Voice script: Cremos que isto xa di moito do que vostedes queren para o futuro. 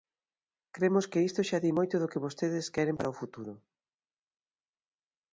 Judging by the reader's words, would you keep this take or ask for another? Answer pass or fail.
pass